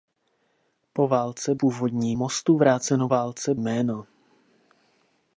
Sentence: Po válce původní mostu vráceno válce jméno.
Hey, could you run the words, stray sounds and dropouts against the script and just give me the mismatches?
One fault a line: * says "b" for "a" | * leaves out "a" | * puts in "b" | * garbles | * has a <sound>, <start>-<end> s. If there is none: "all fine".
all fine